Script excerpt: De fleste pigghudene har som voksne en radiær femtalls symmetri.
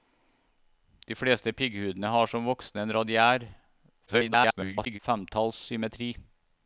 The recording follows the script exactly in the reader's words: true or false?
false